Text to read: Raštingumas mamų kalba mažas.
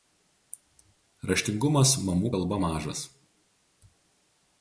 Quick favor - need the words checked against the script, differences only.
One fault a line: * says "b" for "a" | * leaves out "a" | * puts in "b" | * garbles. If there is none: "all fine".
all fine